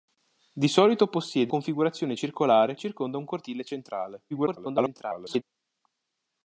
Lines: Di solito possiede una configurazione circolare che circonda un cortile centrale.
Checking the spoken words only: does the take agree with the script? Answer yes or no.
no